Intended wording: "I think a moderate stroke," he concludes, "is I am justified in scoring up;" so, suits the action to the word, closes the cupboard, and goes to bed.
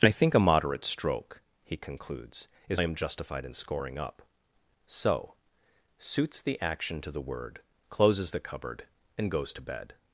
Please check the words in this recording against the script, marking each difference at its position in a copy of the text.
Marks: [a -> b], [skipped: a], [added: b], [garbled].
"I think a moderate stroke," he concludes, "is I am justified in scoring up;" so, suits the action to the word, closes the cupboard, and goes to bed.